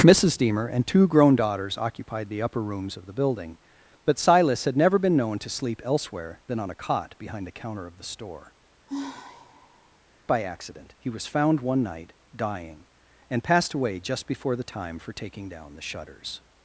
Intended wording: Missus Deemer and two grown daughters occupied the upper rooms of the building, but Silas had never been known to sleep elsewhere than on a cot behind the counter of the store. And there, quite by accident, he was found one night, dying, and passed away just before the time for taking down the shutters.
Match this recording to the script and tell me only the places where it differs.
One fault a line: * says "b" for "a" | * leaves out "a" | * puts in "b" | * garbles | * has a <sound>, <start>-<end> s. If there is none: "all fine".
* leaves out "And there quite"
* has a sigh, 8.9-10.0 s